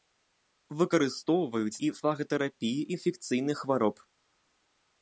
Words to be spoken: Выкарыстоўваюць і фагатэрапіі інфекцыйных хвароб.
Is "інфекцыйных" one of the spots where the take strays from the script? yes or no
no